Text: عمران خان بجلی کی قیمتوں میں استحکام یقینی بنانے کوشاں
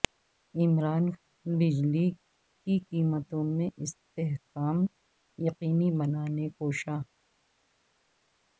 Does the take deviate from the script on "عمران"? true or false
false